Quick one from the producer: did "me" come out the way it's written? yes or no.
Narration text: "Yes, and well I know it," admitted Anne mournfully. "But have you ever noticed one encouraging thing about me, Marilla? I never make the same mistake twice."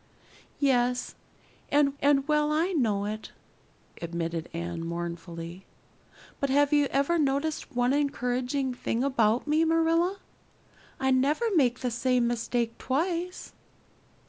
yes